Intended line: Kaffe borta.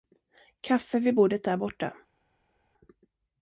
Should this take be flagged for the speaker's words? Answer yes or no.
yes